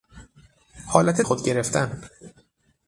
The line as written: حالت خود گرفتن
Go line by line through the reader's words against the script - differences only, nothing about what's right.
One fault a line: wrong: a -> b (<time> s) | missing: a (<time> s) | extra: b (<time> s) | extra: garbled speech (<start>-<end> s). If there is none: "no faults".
no faults